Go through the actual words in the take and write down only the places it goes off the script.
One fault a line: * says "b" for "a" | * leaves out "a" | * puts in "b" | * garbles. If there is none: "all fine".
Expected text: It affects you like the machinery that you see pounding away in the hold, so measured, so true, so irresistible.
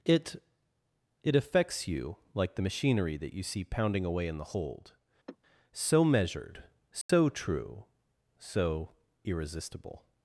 * puts in "it"